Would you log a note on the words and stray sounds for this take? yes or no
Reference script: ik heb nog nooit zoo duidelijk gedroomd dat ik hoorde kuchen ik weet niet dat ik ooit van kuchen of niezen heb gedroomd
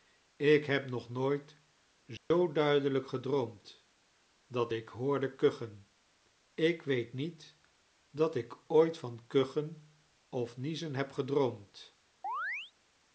yes